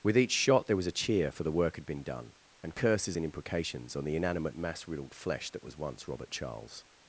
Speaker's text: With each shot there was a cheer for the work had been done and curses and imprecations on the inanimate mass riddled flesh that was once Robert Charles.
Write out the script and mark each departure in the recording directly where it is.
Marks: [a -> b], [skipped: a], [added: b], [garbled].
With each shot there was a cheer for the work had been done and curses and imprecations on the inanimate mass riddled flesh that was once Robert Charles.